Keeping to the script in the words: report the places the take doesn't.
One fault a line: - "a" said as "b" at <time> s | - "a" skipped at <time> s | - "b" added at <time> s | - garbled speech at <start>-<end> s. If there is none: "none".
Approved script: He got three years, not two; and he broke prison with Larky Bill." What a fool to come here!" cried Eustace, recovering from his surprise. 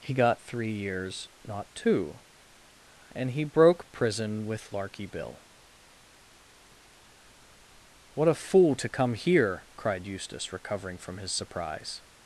none